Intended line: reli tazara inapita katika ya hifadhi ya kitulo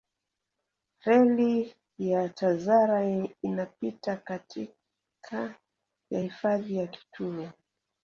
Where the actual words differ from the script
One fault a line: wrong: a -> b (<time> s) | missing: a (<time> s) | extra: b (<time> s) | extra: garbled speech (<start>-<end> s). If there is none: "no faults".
extra: ya (2.0 s)